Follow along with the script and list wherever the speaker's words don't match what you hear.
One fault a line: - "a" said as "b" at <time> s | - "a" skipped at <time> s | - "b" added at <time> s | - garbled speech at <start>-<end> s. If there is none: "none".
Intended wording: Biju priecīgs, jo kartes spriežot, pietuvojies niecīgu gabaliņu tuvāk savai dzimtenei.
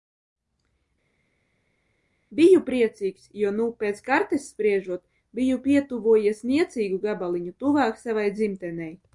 - "nu pēc" added at 3.6 s
- "biju" added at 5.4 s